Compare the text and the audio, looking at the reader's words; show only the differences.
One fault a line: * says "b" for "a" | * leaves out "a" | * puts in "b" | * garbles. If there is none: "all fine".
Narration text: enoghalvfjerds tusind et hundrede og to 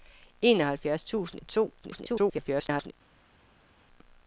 * leaves out "et hundrede"
* garbles